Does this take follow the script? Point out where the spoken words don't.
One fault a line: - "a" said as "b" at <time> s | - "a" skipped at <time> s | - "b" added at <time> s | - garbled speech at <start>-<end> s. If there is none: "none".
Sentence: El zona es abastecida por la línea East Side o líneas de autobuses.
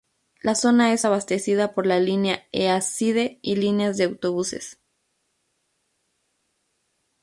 - "El" said as "La" at 0.4 s
- "o" said as "y" at 3.4 s